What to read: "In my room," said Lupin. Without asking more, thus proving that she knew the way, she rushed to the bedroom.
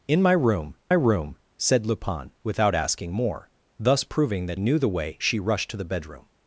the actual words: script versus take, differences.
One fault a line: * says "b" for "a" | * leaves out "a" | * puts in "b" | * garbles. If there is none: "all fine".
* puts in "room"
* leaves out "she"